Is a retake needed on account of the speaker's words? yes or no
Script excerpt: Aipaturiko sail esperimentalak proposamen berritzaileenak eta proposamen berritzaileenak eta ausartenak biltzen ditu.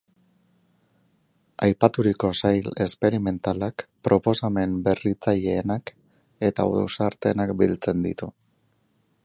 yes